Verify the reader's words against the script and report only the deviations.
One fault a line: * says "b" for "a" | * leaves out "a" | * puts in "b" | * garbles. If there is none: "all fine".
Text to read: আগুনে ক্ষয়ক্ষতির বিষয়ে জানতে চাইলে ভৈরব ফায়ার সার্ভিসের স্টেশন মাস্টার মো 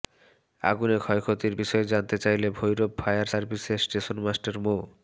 all fine